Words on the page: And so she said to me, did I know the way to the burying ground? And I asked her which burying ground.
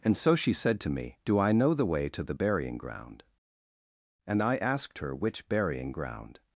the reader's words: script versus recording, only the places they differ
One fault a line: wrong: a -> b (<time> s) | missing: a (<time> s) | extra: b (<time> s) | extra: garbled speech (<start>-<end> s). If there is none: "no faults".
wrong: did -> do (1.2 s)